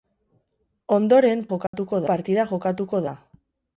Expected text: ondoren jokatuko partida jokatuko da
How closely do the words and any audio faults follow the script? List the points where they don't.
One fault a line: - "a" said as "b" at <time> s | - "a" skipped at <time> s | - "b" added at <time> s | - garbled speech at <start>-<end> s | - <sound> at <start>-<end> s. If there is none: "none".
- dropout at 1.7-1.7 s